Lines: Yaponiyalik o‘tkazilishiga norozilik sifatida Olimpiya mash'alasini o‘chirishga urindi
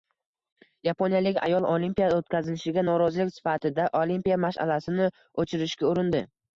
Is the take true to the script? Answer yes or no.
no